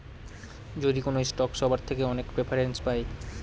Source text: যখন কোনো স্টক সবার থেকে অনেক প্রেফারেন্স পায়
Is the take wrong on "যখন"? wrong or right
wrong